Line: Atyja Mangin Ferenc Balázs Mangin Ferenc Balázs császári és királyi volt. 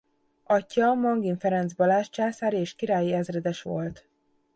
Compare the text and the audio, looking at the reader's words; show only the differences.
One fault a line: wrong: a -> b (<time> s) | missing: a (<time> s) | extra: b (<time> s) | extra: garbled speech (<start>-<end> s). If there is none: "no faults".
missing: Mangin Ferenc Balázs (2.1 s)
extra: ezredes (3.1 s)